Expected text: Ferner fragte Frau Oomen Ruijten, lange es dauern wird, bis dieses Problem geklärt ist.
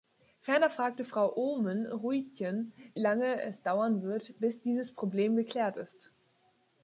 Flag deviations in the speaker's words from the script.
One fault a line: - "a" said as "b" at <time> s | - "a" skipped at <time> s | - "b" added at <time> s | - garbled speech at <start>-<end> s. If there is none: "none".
none